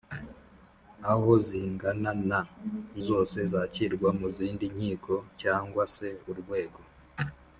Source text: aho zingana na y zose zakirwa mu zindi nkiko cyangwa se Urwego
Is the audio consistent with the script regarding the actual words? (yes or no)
yes